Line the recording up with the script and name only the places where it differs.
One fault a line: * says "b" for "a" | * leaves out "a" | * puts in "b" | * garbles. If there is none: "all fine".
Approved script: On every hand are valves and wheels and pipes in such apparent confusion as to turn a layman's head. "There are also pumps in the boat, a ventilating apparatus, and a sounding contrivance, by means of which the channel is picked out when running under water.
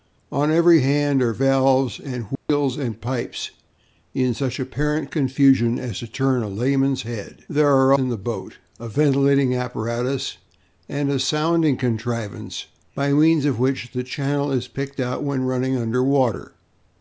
* leaves out "also pumps"